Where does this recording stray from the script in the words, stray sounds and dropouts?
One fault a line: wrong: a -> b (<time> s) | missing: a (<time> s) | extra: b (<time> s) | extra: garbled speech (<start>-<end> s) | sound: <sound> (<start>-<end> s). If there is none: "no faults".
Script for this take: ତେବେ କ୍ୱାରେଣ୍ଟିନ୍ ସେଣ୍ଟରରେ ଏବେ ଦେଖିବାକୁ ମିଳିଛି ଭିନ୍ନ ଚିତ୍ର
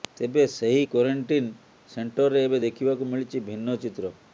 extra: ସେହି (0.5 s)